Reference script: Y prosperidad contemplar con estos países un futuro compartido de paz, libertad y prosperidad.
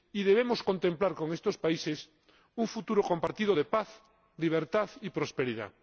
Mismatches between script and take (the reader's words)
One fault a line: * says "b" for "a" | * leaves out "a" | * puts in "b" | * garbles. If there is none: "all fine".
* says "debemos" for "prosperidad"